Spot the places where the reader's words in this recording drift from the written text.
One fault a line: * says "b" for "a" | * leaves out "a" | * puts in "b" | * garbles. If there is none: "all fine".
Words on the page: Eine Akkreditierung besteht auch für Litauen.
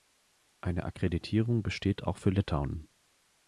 all fine